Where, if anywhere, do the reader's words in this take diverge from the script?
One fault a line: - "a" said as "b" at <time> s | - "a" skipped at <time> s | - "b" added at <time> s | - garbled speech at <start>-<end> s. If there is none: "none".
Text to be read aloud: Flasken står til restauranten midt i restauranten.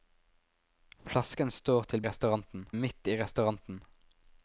none